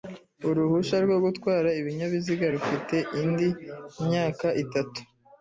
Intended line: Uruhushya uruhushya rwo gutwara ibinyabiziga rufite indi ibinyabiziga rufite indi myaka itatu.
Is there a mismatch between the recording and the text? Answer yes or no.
yes